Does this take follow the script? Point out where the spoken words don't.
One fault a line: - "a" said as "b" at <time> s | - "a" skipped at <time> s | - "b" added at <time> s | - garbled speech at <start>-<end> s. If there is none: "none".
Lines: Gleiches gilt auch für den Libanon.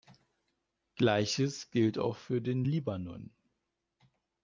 none